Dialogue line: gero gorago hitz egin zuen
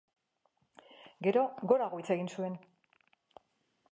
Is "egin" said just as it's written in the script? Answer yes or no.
yes